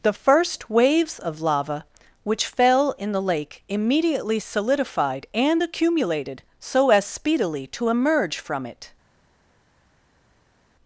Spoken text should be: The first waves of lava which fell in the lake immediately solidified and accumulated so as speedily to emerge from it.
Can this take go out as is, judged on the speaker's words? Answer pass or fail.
pass